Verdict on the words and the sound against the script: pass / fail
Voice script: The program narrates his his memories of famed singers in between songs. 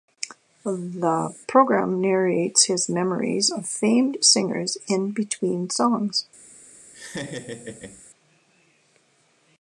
fail